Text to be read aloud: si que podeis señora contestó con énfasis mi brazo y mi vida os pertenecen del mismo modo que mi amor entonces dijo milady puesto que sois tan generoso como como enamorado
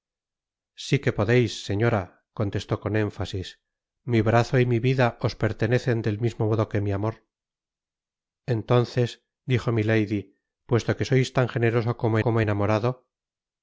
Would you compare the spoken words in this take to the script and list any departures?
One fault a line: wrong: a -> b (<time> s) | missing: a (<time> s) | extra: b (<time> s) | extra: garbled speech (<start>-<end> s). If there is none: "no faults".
no faults